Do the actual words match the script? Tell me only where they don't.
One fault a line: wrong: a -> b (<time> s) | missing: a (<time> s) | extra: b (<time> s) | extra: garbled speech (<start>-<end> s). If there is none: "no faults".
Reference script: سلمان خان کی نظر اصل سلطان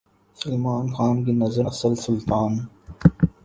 no faults